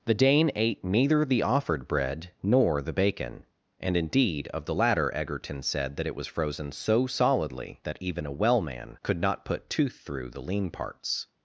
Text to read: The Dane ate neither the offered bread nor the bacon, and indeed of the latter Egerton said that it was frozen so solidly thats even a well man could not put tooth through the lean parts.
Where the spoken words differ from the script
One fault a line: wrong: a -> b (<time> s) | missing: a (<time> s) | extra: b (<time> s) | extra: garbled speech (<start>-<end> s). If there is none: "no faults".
wrong: thats -> that (7.8 s)